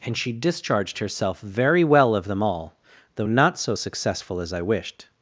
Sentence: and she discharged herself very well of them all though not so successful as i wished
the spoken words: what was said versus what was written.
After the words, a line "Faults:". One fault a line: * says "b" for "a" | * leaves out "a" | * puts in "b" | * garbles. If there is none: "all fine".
and she discharged herself very well of them all though not so successful as i wished
Faults:
all fine